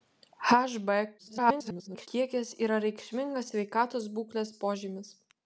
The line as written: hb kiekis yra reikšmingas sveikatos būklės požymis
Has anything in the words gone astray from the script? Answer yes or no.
yes